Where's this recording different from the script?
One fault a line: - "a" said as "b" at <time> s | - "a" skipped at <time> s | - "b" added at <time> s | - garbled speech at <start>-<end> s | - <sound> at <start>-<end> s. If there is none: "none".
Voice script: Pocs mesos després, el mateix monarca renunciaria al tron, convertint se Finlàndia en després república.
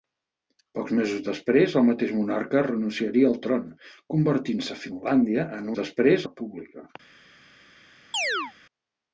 - chirp at 8.1-8.5 s